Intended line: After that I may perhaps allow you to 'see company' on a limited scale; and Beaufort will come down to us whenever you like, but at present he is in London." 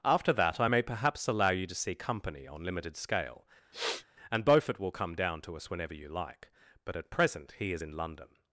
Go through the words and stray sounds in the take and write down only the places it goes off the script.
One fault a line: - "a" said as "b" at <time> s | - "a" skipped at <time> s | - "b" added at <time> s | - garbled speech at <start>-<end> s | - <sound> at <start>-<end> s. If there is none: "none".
- "a" skipped at 2.6 s
- sniff at 3.7-4.1 s